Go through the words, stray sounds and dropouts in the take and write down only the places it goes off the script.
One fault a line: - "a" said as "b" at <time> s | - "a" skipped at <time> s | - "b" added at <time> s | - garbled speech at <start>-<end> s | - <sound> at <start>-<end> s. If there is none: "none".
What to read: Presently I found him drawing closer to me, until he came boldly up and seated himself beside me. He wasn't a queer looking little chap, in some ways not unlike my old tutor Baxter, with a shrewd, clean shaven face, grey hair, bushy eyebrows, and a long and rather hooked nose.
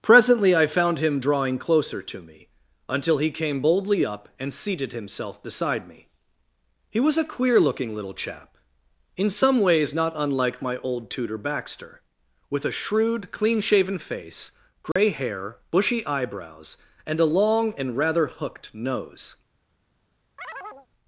- "wasn't" said as "was" at 7.0 s
- dropout at 14.9-15.0 s
- chirp at 20.4-20.9 s